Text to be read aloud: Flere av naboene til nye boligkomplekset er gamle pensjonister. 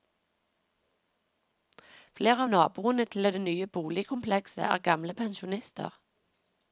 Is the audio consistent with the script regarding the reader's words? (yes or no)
no